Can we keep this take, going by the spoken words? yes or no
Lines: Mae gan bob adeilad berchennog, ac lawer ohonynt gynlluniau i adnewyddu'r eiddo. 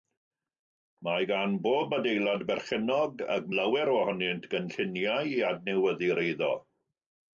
yes